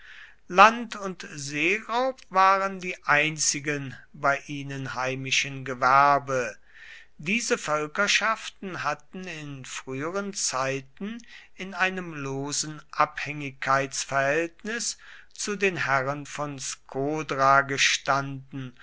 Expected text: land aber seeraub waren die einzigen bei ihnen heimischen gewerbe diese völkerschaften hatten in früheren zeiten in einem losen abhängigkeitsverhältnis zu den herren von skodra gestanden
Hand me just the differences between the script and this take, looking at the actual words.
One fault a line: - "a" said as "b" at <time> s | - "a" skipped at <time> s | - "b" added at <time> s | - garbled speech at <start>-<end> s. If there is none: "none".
- "aber" said as "und" at 0.9 s